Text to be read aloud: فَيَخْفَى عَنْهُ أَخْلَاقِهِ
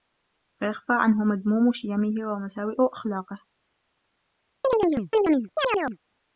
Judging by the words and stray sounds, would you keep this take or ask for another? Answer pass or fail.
fail